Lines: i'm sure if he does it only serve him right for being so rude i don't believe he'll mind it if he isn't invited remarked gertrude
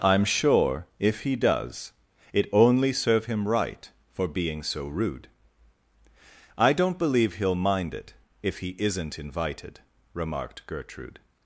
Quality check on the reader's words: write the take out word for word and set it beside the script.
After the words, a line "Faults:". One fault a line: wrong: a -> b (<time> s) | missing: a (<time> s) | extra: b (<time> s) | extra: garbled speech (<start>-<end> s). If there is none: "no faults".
i'm sure if he does it only serve him right for being so rude i don't believe he'll mind it if he isn't invited remarked gertrude
Faults:
no faults